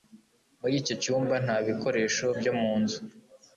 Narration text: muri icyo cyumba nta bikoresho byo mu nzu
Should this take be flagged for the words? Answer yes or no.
no